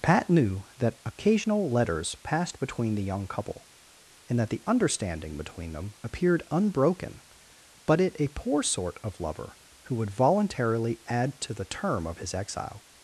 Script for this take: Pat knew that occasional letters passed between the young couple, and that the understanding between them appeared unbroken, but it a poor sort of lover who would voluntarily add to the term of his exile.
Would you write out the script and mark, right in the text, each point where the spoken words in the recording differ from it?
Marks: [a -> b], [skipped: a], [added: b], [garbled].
Pat knew that occasional letters passed between the young couple, and that the understanding between them appeared unbroken, but it a poor sort of lover who would voluntarily add to the term of his exile.